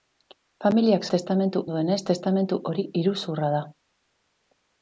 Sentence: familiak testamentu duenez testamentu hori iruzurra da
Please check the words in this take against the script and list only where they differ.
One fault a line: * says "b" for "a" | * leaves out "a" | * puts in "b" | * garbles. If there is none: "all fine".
all fine